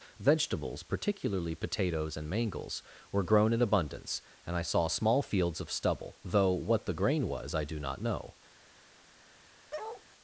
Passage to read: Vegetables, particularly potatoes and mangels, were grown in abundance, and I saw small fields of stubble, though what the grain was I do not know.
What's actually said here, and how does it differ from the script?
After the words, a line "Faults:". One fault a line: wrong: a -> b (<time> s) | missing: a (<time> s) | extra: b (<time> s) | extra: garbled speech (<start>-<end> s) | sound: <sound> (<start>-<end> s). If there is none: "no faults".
Vegetables, particularly potatoes and mangels, were grown in abundance, and I saw small fields of stubble, though what the grain was I do not know.
Faults:
sound: bark (9.7-10.0 s)